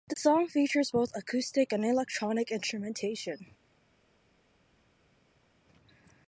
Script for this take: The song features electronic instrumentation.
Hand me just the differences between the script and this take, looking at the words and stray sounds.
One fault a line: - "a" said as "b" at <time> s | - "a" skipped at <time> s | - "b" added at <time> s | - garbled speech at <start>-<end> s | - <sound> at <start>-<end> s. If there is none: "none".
- "both acoustic and" added at 0.9 s